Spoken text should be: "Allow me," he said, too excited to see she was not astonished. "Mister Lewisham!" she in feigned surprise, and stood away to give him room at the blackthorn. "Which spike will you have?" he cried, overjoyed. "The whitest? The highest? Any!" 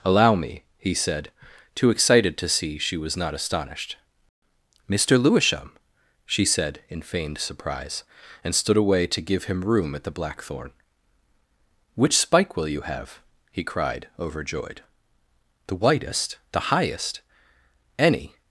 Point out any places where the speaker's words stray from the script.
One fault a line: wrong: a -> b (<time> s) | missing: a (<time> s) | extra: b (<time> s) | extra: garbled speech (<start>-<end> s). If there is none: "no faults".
extra: said (6.4 s)